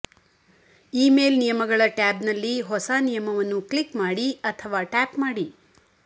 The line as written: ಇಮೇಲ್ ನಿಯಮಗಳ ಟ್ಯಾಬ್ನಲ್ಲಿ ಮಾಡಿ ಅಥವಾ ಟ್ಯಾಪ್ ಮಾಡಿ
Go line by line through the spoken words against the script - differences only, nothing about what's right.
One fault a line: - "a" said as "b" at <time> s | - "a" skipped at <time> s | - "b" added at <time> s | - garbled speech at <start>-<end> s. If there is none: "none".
- "ಹೊಸ ನಿಯಮವನ್ನು ಕ್ಲಿಕ್" added at 2.6 s